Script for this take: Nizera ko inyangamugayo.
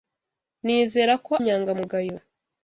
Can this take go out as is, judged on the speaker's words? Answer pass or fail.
pass